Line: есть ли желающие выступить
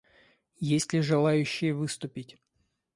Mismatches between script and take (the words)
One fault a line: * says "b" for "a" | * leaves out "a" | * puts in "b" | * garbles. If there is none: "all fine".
all fine